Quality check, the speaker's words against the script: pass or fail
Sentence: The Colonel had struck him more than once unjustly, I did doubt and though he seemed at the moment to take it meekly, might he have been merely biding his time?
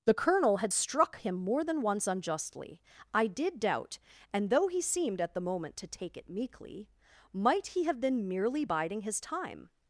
pass